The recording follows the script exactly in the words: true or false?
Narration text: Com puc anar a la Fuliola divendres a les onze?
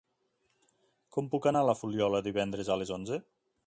true